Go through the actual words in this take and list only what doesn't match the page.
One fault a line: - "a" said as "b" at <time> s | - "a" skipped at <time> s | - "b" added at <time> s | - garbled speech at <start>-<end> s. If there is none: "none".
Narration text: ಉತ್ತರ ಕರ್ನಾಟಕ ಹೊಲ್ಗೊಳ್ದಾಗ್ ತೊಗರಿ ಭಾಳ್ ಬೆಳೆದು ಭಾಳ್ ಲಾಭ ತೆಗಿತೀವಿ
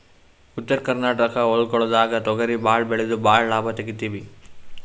none